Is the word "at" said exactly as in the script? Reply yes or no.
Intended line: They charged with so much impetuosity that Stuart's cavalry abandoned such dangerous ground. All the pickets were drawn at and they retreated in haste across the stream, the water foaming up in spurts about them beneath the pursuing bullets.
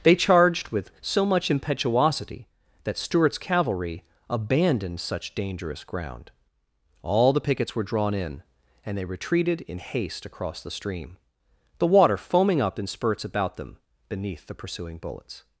no